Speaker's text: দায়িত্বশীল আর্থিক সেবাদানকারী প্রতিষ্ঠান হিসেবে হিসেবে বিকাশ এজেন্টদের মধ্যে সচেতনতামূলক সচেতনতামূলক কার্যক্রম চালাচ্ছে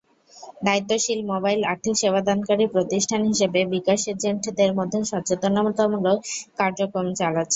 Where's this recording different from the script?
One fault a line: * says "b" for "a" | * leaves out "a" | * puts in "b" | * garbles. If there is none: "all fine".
* puts in "মোবাইল"
* leaves out "হিসেবে"
* leaves out "সচেতনতামূলক"